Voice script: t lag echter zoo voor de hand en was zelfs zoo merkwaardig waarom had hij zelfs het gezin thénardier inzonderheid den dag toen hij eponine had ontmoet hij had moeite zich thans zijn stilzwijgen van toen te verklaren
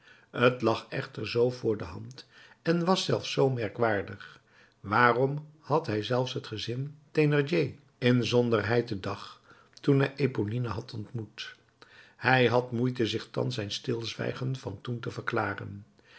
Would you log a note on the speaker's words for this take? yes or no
no